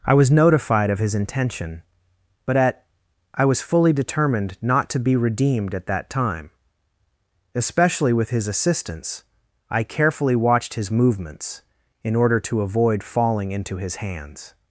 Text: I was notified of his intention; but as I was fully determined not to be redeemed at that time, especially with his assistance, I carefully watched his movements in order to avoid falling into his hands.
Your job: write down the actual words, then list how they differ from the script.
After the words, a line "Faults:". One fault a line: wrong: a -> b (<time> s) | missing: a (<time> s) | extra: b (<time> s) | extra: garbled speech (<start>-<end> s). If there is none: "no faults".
I was notified of his intention; but at I was fully determined not to be redeemed at that time, especially with his assistance, I carefully watched his movements in order to avoid falling into his hands.
Faults:
wrong: as -> at (2.6 s)